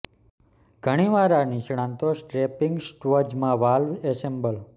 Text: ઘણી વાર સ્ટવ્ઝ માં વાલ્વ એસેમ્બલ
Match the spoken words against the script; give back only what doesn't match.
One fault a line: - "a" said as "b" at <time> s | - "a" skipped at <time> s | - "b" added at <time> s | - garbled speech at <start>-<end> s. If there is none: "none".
- "આ નિષ્ણાતો સ્ટ્રેપિંગ" added at 1.4 s